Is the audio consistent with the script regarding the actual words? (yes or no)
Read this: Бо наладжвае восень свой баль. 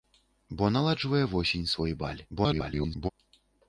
no